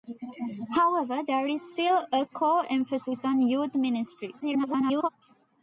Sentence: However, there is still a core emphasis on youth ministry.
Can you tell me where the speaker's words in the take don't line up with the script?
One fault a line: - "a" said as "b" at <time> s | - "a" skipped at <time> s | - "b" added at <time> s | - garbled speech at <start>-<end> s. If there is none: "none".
- garbled speech at 4.4-5.1 s